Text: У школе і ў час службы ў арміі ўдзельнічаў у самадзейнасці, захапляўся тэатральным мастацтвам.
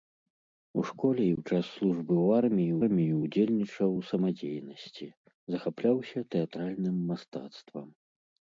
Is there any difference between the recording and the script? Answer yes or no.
yes